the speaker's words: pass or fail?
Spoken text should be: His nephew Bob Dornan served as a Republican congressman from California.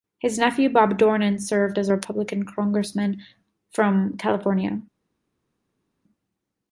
pass